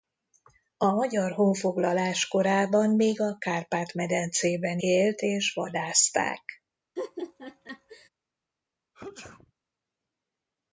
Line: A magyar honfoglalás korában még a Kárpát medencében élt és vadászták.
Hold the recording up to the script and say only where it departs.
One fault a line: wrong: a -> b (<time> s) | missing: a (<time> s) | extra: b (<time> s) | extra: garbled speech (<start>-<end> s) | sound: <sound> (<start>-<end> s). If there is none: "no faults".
sound: laugh (7.0-8.1 s)
sound: sneeze (8.9-9.5 s)